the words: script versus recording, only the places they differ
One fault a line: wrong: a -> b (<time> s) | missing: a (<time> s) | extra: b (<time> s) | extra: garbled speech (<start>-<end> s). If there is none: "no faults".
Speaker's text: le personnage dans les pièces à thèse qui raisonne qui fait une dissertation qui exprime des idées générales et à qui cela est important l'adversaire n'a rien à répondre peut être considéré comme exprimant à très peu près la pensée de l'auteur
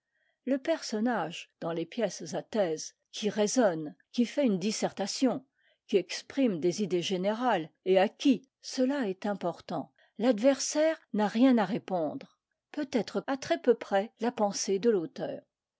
missing: considéré comme exprimant (13.2 s)